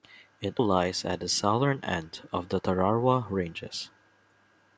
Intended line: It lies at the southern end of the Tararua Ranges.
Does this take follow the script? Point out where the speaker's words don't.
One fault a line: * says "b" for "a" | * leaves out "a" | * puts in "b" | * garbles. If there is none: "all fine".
all fine